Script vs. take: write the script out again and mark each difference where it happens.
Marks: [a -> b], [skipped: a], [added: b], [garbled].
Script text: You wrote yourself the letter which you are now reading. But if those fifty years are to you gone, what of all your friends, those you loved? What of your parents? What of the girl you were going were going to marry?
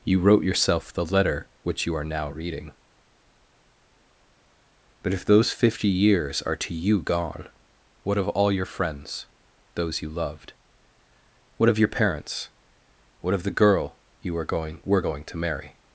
You wrote yourself the letter which you are now reading. But if those fifty years are to you gone, what of all your friends, those you loved? What of your parents? What of the girl you were going were going to marry?